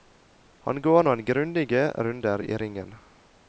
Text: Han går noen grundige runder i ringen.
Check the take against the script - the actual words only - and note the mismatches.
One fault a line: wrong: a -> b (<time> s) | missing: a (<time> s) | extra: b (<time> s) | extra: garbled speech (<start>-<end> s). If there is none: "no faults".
no faults